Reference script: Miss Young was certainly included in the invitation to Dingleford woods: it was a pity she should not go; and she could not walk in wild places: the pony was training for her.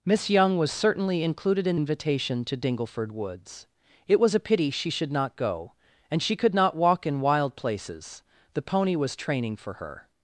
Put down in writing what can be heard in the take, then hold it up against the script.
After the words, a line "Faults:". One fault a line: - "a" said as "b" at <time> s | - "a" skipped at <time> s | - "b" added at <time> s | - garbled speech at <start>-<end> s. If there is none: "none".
Miss Young was certainly included in invitation to Dingleford woods: it was a pity she should not go; and she could not walk in wild places: the pony was training for her.
Faults:
- "the" skipped at 1.8 s